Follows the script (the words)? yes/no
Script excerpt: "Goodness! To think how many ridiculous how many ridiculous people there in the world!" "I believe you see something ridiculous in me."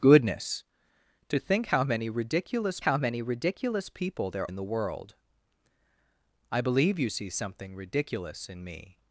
yes